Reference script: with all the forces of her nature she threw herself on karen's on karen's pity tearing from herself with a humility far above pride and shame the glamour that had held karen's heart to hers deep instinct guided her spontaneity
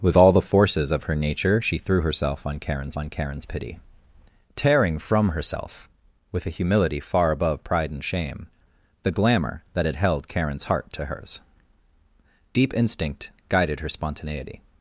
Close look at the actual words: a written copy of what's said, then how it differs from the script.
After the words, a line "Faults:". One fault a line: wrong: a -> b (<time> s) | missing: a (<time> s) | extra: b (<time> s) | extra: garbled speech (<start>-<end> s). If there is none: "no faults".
with all the forces of her nature she threw herself on karen's on karen's pity tearing from herself with a humility far above pride and shame the glamour that had held karen's heart to hers deep instinct guided her spontaneity
Faults:
no faults